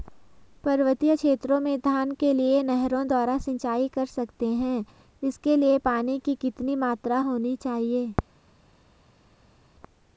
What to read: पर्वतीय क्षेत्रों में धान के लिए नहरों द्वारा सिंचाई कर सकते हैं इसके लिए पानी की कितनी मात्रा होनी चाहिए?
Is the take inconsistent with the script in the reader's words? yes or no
no